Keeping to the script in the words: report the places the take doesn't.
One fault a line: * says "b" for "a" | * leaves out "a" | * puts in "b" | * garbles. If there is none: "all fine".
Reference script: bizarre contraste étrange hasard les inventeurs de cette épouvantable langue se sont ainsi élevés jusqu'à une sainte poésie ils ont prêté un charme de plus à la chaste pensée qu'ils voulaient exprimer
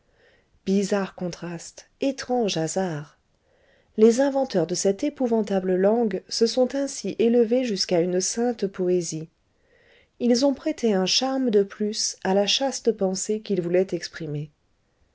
all fine